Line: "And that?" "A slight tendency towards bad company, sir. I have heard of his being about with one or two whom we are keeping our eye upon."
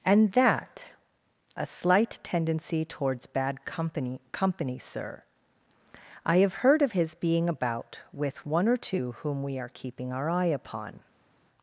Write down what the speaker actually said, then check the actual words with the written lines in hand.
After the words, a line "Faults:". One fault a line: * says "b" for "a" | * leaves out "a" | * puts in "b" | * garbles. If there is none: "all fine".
"And that?" "A slight tendency towards bad company company, sir. I have heard of his being about with one or two whom we are keeping our eye upon."
Faults:
* puts in "company"